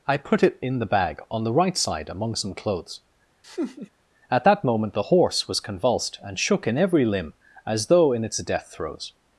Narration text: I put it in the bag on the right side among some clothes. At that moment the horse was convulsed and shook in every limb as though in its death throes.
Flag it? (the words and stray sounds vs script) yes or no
yes